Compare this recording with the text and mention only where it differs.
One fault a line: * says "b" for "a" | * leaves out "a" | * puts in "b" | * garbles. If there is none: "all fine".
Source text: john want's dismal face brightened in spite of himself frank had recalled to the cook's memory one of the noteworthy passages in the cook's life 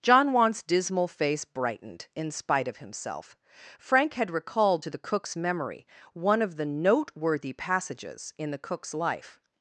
all fine